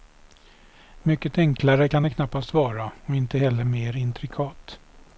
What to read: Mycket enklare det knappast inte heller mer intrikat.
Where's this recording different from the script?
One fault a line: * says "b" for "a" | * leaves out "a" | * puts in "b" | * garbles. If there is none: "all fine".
* puts in "kan"
* puts in "vara och"